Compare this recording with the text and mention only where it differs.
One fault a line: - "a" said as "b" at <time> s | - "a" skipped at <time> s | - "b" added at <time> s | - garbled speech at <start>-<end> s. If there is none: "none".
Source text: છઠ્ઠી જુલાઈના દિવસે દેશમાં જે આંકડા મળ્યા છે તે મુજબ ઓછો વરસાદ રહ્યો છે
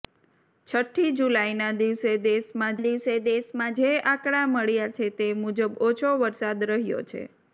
- "દિવસે દેશમાં" added at 2.8 s